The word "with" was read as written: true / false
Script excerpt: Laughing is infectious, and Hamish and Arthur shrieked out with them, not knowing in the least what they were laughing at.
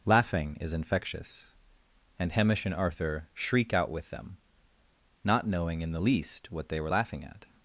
true